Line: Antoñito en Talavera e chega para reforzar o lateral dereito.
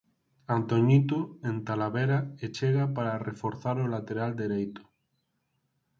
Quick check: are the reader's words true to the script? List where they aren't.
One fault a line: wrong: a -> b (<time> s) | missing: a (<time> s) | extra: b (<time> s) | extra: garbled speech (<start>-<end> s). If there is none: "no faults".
no faults